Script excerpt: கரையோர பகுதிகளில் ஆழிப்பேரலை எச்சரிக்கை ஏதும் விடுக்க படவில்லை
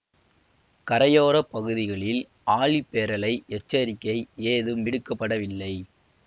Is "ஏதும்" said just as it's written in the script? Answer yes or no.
yes